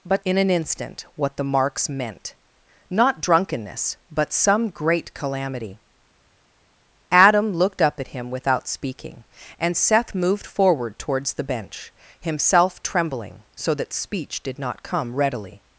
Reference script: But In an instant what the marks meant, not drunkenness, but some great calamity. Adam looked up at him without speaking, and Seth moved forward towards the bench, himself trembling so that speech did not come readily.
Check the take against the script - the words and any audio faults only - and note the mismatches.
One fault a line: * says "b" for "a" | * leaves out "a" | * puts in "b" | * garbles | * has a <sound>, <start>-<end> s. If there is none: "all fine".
all fine